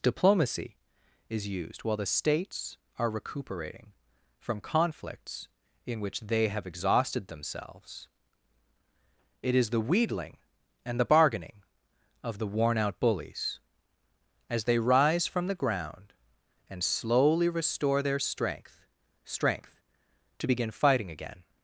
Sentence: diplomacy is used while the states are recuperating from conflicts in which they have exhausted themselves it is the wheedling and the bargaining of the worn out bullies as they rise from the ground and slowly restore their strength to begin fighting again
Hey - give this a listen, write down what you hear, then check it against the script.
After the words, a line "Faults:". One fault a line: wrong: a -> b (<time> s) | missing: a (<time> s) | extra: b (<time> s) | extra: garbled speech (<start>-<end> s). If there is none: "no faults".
diplomacy is used while the states are recuperating from conflicts in which they have exhausted themselves it is the wheedling and the bargaining of the worn out bullies as they rise from the ground and slowly restore their strength strength to begin fighting again
Faults:
extra: strength (19.2 s)